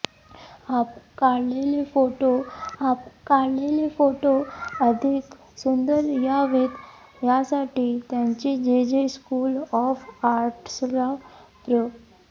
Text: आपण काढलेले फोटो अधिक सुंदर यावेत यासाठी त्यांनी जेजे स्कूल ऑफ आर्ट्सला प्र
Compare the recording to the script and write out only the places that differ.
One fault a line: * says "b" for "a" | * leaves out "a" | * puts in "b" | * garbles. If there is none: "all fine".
* puts in "आपण काढलेले फोटो"